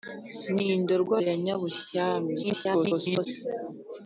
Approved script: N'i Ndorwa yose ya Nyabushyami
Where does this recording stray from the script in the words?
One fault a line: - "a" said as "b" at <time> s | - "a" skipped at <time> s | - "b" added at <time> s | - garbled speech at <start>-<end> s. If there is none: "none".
- "yose" skipped at 1.2 s
- garbled speech at 2.4-3.3 s